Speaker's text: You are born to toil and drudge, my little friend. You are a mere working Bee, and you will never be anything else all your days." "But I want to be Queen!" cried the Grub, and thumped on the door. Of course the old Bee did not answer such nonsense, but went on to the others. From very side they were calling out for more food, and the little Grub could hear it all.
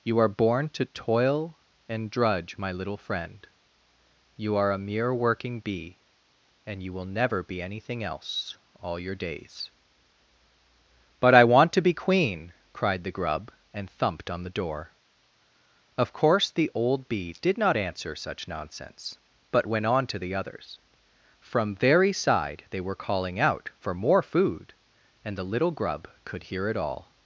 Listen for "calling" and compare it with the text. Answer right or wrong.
right